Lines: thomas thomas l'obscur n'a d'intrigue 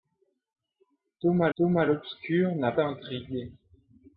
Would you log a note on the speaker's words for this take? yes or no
no